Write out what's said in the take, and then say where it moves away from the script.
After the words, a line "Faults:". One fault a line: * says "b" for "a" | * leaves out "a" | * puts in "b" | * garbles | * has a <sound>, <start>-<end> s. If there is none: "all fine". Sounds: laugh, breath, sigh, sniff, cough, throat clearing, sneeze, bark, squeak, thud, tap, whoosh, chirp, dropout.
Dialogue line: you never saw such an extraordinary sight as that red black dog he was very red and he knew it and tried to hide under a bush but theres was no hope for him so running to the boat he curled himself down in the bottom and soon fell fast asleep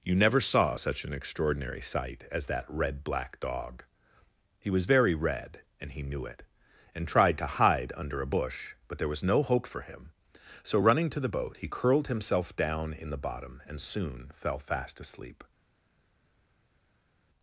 you never saw such an extraordinary sight as that red black dog he was very red and he knew it and tried to hide under a bush but there was no hope for him so running to the boat he curled himself down in the bottom and soon fell fast asleep
Faults:
* says "there" for "theres"